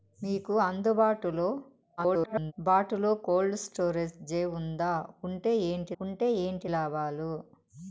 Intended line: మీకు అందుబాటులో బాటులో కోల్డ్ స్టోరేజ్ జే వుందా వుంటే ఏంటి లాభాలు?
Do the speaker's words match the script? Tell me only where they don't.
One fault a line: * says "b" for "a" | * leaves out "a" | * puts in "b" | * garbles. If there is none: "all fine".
* garbles
* puts in "వుంటే ఏంటి"